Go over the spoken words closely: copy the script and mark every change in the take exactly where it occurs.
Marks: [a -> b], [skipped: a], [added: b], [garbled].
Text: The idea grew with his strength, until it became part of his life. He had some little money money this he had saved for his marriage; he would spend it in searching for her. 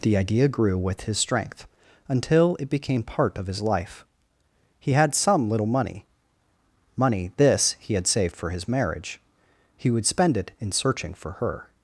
The idea grew with his strength, until it became part of his life. He had some little money money this he had saved for his marriage; he would spend it in searching for her.